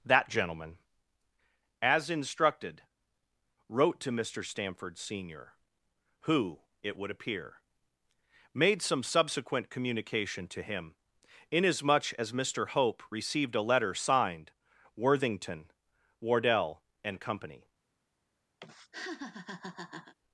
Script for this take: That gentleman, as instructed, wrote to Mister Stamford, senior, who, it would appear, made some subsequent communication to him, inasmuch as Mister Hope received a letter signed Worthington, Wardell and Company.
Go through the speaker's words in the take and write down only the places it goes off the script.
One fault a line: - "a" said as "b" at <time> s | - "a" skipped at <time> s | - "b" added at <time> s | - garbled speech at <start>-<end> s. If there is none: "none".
none